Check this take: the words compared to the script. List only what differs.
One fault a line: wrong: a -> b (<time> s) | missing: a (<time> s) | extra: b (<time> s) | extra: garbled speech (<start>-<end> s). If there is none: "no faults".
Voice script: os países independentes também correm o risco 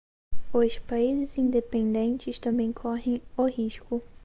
no faults